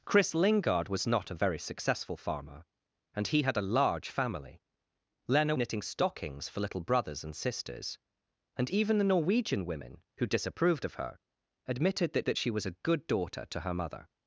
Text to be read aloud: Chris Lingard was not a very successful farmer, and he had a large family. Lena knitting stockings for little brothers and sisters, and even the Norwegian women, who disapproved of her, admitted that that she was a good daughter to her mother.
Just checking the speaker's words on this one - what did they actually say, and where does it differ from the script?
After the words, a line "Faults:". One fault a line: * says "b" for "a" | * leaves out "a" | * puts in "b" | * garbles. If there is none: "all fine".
Chris Lingard was not a very successful farmer, and he had a large family. Lena knitting stockings for little brothers and sisters, and even the Norwegian women, who disapproved of her, admitted that that she was a good daughter to her mother.
Faults:
all fine